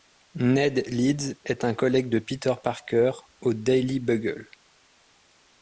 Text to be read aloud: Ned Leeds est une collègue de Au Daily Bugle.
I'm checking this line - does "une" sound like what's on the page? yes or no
no